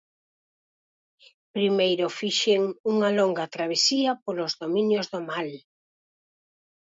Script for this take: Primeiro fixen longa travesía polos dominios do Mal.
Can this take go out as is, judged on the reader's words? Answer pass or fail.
fail